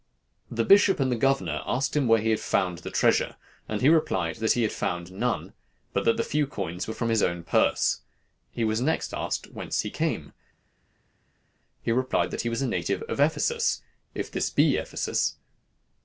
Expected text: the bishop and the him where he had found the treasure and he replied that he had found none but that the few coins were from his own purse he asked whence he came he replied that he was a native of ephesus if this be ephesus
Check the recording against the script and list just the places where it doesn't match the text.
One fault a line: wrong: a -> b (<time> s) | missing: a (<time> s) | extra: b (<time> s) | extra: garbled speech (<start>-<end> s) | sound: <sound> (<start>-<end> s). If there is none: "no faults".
extra: governor asked (1.1 s)
extra: was next (8.6 s)